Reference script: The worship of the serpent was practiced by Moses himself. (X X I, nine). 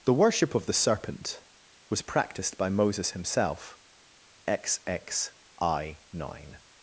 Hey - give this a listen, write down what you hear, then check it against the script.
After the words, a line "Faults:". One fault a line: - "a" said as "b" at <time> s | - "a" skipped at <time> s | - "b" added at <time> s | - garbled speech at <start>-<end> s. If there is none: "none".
The worship of the serpent was practiced by Moses himself. (X X I, nine).
Faults:
none